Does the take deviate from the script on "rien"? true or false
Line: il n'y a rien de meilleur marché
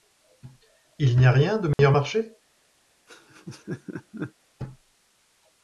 false